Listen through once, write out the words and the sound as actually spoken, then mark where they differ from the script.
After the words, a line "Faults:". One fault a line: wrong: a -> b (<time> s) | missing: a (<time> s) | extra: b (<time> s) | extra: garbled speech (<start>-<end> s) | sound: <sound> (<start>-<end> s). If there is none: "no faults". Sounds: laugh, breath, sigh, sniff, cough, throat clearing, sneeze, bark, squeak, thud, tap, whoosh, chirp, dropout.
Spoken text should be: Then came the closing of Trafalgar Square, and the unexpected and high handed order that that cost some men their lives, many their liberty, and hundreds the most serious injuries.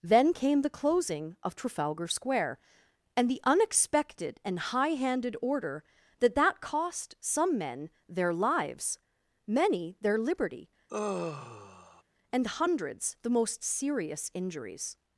Then came the closing of Trafalgar Square, and the unexpected and high handed order that that cost some men their lives, many their liberty, and hundreds the most serious injuries.
Faults:
sound: sigh (10.9-12.0 s)